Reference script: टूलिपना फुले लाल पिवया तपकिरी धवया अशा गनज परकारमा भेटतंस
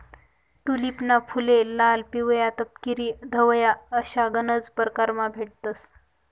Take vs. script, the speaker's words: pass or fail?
pass